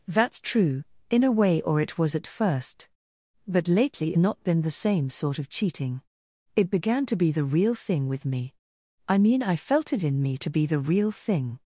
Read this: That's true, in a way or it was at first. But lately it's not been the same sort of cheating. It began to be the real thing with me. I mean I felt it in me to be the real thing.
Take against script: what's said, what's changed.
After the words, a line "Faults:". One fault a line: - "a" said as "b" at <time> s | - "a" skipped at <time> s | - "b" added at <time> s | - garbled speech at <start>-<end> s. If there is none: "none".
That's true, in a way or it was at first. But lately not been the same sort of cheating. It began to be the real thing with me. I mean I felt it in me to be the real thing.
Faults:
- "it's" skipped at 4.2 s